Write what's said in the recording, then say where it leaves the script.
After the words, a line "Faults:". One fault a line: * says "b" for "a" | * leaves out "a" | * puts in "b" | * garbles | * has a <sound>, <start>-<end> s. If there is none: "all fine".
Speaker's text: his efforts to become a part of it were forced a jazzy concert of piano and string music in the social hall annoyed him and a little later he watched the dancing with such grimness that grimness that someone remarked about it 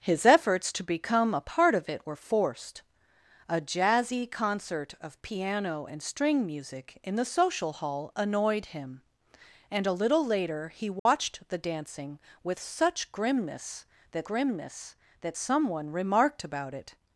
his efforts to become a part of it were forced a jazzy concert of piano and string music in the social hall annoyed him and a little later he watched the dancing with such grimness that grimness that someone remarked about it
Faults:
* has a dropout, 11.0-11.1 s